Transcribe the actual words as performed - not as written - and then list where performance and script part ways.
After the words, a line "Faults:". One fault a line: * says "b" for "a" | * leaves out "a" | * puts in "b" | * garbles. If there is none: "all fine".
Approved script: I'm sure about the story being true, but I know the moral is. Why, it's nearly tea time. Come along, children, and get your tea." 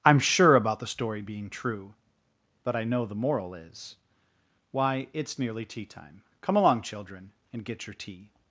I'm sure about the story being true, but I know the moral is. Why, it's nearly tea time. Come along, children, and get your tea."
Faults:
all fine